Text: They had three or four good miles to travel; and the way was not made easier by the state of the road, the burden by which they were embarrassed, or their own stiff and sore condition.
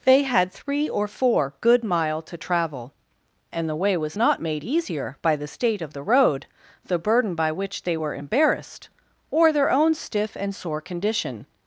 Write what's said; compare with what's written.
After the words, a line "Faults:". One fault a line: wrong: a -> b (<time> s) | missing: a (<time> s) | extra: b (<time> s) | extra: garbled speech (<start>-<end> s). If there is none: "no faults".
They had three or four good mile to travel; and the way was not made easier by the state of the road, the burden by which they were embarrassed, or their own stiff and sore condition.
Faults:
wrong: miles -> mile (1.8 s)